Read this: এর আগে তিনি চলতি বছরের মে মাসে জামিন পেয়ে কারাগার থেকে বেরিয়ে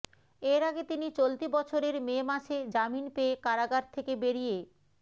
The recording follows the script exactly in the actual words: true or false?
true